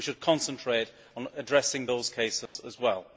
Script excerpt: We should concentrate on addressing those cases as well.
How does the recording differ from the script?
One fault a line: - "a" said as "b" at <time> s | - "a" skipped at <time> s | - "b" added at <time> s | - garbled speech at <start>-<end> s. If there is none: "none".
none